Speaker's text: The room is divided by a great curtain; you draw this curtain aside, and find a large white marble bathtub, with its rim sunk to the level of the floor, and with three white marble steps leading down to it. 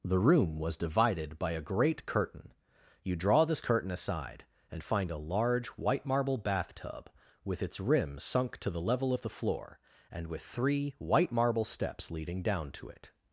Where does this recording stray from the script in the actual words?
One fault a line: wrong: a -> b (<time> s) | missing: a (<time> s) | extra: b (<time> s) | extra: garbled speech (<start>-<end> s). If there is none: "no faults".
wrong: is -> was (0.6 s)